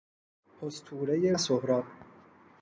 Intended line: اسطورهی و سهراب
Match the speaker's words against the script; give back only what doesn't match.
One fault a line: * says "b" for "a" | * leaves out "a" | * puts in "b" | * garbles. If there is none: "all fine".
all fine